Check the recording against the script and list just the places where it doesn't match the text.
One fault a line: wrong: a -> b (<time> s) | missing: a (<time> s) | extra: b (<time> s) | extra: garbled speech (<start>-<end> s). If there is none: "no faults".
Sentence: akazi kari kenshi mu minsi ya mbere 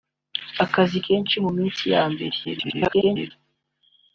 missing: kari (1.0 s)
extra: garbled speech (2.4-3.3 s)